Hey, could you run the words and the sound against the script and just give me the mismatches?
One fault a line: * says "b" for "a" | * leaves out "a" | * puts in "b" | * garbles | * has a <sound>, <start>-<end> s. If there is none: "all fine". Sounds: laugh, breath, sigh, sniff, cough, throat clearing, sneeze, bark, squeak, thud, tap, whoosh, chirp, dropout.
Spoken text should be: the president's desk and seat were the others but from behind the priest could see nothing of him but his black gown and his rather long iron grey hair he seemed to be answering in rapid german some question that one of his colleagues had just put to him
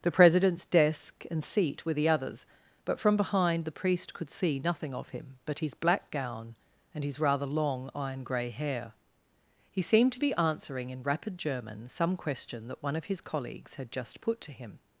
all fine